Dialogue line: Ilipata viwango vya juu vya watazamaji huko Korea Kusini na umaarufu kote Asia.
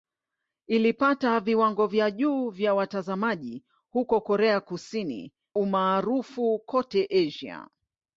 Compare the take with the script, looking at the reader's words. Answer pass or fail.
fail